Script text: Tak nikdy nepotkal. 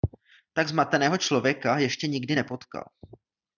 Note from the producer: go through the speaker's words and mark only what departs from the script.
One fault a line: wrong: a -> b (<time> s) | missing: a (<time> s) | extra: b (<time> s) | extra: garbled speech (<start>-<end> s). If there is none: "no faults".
extra: zmateného člověka ještě (0.7 s)